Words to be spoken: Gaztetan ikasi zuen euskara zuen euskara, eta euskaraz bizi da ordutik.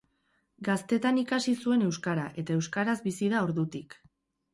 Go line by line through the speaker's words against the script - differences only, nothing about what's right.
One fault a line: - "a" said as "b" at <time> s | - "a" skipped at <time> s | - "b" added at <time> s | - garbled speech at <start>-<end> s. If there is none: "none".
- "zuen euskara" skipped at 2.2 s